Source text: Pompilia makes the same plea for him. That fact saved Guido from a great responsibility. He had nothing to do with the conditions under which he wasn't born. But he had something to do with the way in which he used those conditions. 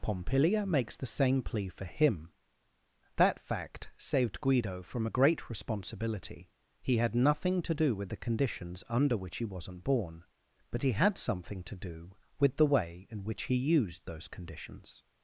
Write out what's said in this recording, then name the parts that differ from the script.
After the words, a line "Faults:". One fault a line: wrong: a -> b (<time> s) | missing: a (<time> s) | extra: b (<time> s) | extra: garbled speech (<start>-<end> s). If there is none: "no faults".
Pompilia makes the same plea for him. That fact saved Guido from a great responsibility. He had nothing to do with the conditions under which he wasn't born. But he had something to do with the way in which he used those conditions.
Faults:
no faults